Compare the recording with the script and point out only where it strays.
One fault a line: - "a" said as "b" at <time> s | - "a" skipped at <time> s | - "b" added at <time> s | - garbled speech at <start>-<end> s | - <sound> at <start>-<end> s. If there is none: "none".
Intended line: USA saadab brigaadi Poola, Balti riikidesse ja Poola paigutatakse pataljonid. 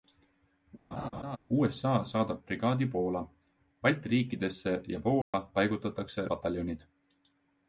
- laugh at 0.9-1.4 s
- dropout at 5.2-5.3 s